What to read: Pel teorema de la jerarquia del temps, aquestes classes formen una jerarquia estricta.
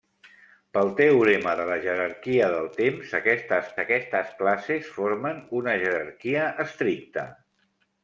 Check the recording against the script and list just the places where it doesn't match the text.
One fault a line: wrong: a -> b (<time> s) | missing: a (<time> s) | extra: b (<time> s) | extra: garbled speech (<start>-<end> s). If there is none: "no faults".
extra: aquestes (3.8 s)